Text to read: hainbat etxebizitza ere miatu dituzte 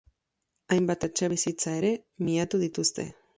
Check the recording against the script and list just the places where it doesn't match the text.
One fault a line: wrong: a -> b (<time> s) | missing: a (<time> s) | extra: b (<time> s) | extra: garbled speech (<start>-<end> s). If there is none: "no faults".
no faults